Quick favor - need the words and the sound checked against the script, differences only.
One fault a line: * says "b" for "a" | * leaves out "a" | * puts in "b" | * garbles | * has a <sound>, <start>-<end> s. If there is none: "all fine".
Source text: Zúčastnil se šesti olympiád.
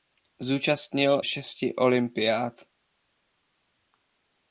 * leaves out "se"